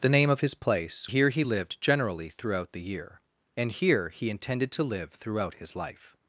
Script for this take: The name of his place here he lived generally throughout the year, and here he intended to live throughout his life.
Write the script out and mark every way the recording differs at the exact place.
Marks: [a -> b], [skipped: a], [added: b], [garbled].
The name of his place here he lived generally throughout the year, and here he intended to live throughout his life.